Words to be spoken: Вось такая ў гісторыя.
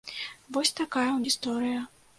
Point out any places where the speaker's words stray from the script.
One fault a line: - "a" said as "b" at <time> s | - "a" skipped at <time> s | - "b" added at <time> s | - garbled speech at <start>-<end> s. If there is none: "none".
none